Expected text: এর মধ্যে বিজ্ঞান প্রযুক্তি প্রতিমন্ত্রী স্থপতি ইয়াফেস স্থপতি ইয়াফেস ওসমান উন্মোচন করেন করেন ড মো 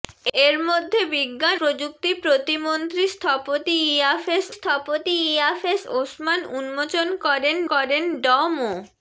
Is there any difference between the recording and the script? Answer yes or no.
no